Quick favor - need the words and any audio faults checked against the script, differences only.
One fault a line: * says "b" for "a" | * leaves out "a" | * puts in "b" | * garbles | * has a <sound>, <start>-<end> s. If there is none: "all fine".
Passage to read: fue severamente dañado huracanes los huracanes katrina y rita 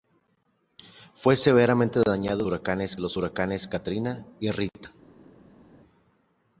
all fine